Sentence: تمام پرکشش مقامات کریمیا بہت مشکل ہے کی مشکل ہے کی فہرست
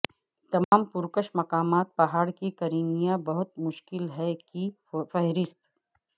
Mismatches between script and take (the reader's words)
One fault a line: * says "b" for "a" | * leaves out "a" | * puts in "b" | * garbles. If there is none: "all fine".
* puts in "پہاڑ کی"
* leaves out "مشکل ہے کی"